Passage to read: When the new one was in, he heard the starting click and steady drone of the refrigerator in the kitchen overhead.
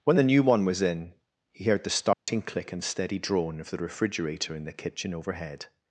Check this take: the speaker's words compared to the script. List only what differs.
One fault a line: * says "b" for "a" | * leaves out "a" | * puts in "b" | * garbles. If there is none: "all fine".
all fine